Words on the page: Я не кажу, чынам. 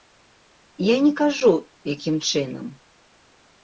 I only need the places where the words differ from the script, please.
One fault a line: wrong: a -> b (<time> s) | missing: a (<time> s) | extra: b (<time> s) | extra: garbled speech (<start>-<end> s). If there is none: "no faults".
extra: якім (1.9 s)